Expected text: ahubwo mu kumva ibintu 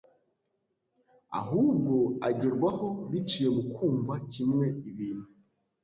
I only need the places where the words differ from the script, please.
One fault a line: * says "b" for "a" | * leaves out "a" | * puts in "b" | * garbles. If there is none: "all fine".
* puts in "agerwaho biciye"
* puts in "kimwe"